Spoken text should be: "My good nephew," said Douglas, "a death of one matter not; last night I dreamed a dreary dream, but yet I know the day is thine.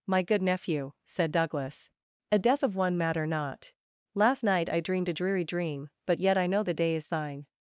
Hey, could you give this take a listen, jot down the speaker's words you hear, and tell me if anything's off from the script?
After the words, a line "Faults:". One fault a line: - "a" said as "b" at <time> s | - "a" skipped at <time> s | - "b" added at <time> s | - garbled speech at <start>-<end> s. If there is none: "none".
"My good nephew," said Douglas, "a death of one matter not; last night I dreamed a dreary dream, but yet I know the day is thine.
Faults:
none